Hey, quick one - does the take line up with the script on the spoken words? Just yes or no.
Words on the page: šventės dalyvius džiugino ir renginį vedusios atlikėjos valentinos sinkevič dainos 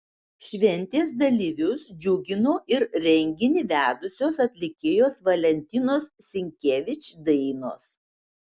yes